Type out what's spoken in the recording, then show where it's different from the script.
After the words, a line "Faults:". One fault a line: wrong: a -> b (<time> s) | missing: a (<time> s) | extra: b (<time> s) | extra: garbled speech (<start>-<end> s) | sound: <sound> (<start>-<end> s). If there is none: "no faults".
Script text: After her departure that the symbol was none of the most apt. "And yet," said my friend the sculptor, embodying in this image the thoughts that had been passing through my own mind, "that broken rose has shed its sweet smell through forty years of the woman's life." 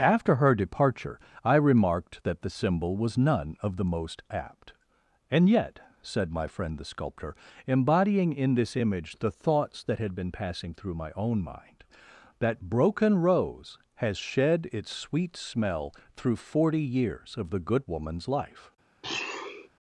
After her departure I remarked that the symbol was none of the most apt. "And yet," said my friend the sculptor, embodying in this image the thoughts that had been passing through my own mind, "that broken rose has shed its sweet smell through forty years of the good woman's life."
Faults:
extra: I remarked (1.4 s)
extra: good (17.6 s)
sound: sniff (19.0-19.7 s)